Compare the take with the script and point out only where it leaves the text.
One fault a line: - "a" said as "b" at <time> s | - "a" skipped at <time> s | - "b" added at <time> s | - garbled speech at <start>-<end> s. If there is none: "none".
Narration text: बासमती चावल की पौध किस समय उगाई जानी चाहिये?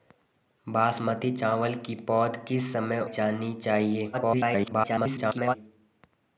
- "उगाई" skipped at 3.0 s
- garbled speech at 4.1-5.6 s